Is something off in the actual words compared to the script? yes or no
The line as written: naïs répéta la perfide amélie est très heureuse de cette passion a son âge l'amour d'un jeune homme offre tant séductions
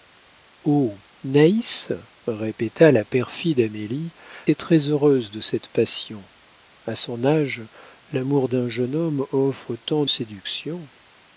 no